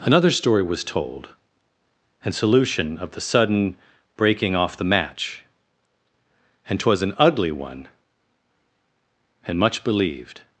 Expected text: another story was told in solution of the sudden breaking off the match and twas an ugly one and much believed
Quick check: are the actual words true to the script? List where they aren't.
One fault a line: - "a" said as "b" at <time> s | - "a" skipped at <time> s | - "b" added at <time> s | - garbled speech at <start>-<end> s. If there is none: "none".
- "in" said as "and" at 2.2 s